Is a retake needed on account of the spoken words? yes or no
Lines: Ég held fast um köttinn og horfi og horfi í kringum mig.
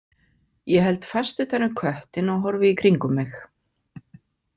yes